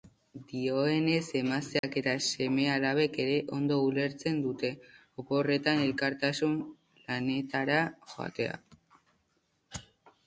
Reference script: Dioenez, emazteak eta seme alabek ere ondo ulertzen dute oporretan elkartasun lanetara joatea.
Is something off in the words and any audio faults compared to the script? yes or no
yes